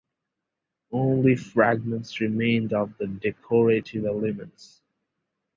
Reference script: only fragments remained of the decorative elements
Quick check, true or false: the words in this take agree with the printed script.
true